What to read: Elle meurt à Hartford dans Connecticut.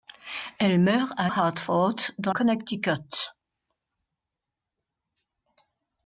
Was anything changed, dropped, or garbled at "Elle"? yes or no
no